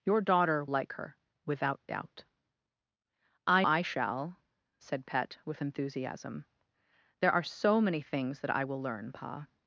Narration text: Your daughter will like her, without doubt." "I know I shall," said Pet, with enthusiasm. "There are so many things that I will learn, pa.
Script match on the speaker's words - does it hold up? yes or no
no